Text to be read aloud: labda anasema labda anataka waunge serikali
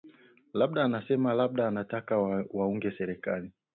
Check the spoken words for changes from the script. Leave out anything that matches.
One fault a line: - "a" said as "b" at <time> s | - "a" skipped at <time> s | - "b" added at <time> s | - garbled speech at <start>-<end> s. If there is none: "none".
none